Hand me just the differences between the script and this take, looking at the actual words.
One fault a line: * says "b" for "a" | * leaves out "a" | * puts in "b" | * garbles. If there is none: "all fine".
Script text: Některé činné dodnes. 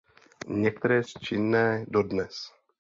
all fine